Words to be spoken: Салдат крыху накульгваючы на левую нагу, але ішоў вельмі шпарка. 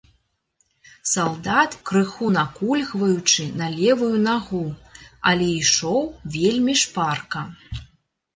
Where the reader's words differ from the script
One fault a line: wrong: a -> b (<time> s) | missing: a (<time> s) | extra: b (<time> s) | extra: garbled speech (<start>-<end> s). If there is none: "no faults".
no faults